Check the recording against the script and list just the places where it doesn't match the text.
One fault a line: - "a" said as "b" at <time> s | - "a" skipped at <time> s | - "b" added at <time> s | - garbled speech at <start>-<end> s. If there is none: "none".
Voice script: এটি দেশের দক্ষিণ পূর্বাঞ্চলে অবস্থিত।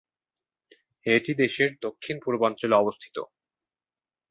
none